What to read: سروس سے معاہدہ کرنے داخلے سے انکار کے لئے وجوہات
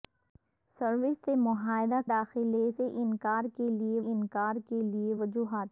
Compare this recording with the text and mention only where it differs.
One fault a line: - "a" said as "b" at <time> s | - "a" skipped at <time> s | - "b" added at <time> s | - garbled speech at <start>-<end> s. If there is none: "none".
- "کرنے" skipped at 2.0 s
- "انکار کے لئے" added at 4.1 s